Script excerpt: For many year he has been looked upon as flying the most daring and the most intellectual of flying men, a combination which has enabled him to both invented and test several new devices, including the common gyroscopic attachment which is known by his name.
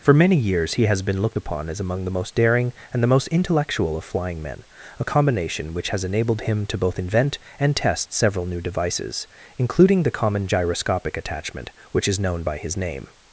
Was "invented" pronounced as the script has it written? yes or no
no